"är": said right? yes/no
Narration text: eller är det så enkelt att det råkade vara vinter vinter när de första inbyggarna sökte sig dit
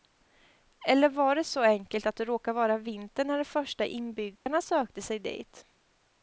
no